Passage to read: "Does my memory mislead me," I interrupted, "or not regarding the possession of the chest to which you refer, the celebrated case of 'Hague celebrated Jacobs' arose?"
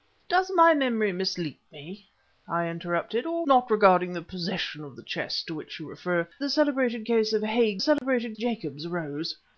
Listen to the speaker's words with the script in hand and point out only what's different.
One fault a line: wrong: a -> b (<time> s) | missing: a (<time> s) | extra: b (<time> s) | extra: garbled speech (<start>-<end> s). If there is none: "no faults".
no faults